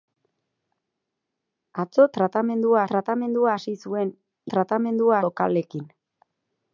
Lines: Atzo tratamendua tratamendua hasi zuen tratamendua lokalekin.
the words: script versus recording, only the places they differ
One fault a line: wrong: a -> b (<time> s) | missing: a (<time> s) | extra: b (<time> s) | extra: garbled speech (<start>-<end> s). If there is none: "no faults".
no faults